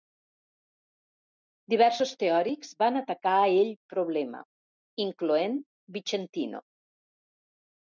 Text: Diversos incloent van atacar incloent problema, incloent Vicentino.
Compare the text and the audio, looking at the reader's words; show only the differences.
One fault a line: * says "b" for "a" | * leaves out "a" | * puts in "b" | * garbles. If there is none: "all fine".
* says "teòrics" for "incloent"
* says "ell" for "incloent"